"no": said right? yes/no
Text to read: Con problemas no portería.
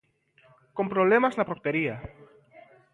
no